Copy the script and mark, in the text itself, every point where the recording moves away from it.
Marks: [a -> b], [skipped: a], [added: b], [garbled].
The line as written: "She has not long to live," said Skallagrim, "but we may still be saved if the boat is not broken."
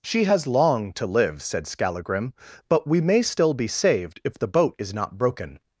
"She has [skipped: not] long to live," said Skallagrim, "but we may still be saved if the boat is not broken."